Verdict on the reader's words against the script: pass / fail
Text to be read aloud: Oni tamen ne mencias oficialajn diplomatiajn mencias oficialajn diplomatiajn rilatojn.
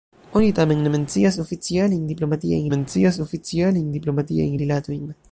pass